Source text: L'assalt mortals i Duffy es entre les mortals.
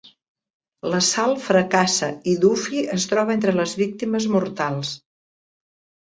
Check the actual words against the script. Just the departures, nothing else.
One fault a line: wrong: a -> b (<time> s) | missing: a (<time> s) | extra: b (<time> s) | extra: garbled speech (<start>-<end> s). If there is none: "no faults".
wrong: mortals -> fracassa (1.5 s)
extra: troba (3.1 s)
extra: víctimes (3.8 s)